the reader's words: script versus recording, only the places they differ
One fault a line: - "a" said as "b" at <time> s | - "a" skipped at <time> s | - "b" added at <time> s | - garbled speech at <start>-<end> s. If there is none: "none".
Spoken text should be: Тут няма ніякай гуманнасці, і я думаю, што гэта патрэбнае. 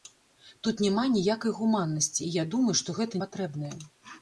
none